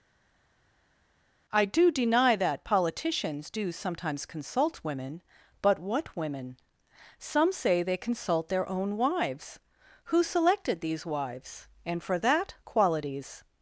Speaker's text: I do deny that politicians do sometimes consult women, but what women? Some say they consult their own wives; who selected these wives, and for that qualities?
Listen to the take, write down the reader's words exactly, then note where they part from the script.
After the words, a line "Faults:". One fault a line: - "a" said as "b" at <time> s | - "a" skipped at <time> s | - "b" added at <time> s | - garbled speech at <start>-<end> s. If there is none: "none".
I do deny that politicians do sometimes consult women, but what women? Some say they consult their own wives; who selected these wives, and for that qualities?
Faults:
none